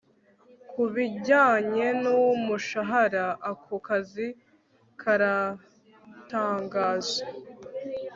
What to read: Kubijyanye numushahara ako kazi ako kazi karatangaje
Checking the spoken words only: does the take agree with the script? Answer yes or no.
no